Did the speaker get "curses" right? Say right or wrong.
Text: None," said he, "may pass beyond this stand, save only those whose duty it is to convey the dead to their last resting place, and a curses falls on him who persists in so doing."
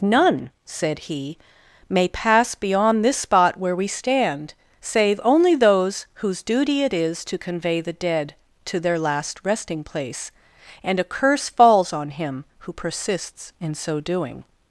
wrong